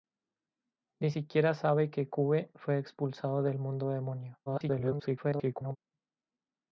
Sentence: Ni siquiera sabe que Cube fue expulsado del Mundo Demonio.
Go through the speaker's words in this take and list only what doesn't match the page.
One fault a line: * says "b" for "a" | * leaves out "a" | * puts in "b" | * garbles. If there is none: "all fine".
* garbles